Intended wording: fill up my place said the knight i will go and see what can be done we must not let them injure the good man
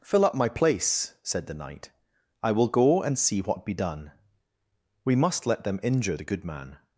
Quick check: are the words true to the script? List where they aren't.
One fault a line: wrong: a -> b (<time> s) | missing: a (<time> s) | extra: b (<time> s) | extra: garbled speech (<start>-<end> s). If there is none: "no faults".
missing: can (3.6 s)
missing: not (5.5 s)